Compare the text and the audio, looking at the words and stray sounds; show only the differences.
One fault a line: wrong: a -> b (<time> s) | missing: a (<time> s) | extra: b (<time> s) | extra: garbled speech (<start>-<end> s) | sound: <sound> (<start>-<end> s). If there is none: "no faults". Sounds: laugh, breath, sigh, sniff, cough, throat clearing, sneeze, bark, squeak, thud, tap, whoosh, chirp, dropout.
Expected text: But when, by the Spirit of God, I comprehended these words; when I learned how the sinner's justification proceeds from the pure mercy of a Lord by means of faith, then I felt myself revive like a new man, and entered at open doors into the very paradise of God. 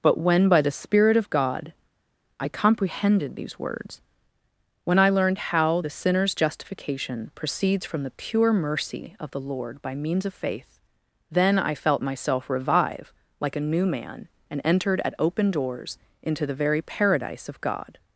wrong: a -> the (9.3 s)